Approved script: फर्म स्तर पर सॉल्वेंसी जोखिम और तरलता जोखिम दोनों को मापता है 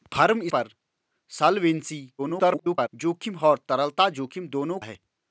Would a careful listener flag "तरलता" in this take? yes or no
no